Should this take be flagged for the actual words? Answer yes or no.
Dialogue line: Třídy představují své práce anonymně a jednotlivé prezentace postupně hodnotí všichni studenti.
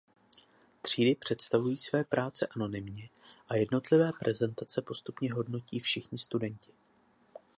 no